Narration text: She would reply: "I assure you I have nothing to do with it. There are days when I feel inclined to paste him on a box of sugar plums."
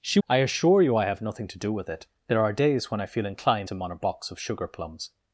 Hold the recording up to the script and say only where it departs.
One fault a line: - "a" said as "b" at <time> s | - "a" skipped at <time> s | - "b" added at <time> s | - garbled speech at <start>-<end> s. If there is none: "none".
- "would reply" skipped at 0.2 s
- "to paste" skipped at 3.7 s